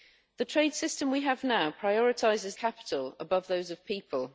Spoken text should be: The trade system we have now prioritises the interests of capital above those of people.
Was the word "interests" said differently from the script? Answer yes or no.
yes